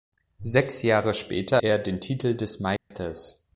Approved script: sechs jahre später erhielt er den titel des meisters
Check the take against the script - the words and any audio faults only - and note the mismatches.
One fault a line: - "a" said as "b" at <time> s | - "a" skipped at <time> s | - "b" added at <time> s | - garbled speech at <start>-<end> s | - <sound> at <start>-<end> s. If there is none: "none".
- "erhielt" skipped at 1.6 s
- dropout at 2.8-2.9 s